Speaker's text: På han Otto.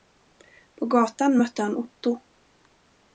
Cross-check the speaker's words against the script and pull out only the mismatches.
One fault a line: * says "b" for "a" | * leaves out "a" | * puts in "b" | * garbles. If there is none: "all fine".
* puts in "gatan mötte"